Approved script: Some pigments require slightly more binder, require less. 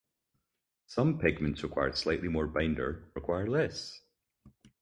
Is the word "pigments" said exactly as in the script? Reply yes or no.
yes